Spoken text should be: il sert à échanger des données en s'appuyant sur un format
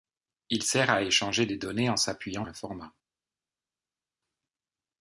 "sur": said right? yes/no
no